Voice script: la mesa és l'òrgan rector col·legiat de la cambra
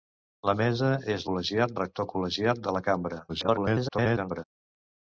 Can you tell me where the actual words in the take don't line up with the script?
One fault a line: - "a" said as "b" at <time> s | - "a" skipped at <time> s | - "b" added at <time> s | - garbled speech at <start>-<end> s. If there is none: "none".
- "l'òrgan" said as "col·legiat" at 1.3 s
- garbled speech at 3.3-4.4 s